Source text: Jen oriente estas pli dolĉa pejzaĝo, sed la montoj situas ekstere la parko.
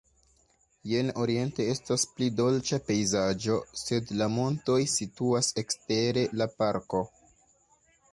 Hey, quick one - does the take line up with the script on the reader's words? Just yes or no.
yes